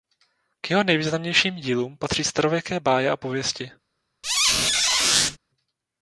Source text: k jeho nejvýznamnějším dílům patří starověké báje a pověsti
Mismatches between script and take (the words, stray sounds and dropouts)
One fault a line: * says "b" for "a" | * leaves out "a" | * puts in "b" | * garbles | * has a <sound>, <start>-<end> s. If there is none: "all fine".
* has a squeak, 4.2-5.4 s